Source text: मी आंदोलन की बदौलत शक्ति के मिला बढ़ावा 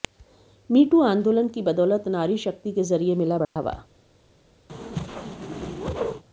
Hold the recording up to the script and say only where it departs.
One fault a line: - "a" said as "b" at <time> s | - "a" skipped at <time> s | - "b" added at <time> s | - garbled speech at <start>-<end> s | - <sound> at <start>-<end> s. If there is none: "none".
- "टू" added at 0.8 s
- "नारी" added at 2.1 s
- "जरिए" added at 2.8 s
- dropout at 3.4-3.6 s
- whoosh at 4.7-6.2 s